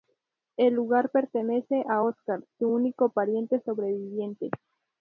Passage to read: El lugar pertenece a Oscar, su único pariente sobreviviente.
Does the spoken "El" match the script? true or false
true